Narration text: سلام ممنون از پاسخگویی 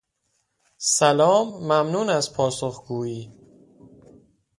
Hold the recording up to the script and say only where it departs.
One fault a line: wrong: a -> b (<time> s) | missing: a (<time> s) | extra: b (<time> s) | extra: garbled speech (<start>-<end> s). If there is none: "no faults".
no faults